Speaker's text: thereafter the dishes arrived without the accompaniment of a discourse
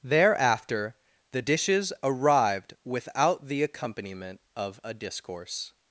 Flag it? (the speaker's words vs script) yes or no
no